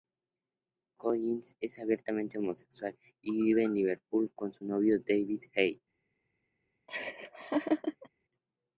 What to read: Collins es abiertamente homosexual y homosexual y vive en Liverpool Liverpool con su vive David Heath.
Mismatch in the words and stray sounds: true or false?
true